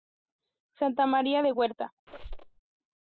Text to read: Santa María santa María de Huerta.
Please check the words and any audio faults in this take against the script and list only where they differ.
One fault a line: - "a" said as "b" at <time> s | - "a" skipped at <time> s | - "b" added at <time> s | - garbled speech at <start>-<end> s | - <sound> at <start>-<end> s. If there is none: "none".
- "santa María" skipped at 1.4 s
- squeak at 2.1-2.6 s